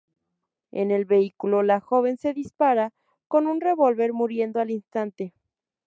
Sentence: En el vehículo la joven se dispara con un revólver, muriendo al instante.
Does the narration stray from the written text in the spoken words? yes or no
no